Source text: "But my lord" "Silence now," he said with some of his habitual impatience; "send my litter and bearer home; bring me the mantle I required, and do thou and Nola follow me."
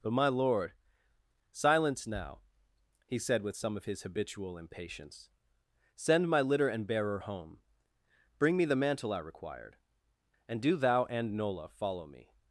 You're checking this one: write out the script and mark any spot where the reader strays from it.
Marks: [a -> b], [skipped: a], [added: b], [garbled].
"But my lord" "Silence now," he said with some of his habitual impatience; "send my litter and bearer home; bring me the mantle I required, and do thou and Nola follow me."